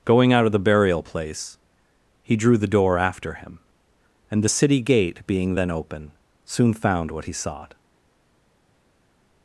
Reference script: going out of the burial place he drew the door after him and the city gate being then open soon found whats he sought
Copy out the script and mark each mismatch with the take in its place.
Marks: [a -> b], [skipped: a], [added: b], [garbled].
going out of the burial place he drew the door after him and the city gate being then open soon found [whats -> what] he sought